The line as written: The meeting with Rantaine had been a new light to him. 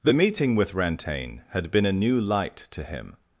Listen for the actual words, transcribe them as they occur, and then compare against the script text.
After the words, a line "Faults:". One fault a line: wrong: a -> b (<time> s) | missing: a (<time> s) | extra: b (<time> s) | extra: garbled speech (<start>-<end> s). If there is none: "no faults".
The meeting with Rantaine had been a new light to him.
Faults:
no faults